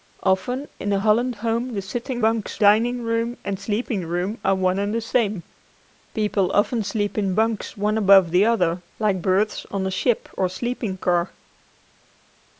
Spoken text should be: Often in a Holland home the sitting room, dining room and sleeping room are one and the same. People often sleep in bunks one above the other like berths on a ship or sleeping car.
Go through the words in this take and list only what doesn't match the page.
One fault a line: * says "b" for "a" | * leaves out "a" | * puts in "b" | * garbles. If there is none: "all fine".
* says "bunks" for "room"